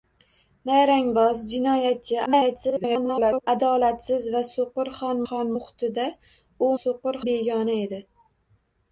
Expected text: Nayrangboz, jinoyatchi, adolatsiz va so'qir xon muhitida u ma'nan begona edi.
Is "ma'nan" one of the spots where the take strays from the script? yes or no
yes